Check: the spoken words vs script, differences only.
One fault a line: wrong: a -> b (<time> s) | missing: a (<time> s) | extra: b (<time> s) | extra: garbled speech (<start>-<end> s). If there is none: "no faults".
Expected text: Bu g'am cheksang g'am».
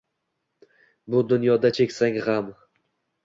wrong: g'am -> dunyoda (1.3 s)